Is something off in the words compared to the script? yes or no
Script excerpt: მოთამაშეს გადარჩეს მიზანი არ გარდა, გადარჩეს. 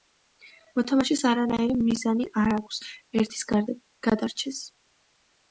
yes